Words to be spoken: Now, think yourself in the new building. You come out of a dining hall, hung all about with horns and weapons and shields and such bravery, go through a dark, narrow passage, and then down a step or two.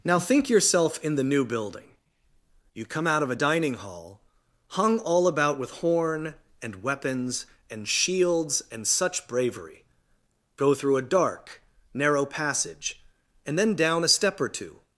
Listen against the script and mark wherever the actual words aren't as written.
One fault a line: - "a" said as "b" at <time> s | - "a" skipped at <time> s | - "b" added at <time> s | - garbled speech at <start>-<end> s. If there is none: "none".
- "horns" said as "horn" at 5.7 s